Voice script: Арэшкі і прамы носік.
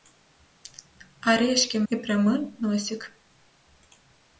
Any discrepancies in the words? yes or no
no